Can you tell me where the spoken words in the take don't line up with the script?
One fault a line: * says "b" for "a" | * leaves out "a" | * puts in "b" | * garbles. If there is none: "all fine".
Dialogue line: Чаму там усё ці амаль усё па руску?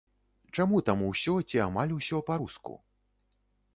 all fine